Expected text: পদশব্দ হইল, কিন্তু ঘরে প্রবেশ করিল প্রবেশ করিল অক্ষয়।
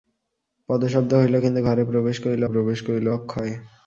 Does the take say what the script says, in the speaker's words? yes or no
yes